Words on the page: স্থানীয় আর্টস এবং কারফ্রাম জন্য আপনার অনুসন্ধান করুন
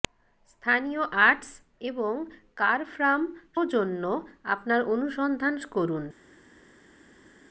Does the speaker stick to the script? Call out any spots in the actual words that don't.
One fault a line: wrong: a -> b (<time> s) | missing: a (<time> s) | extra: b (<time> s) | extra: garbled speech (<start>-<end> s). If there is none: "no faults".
no faults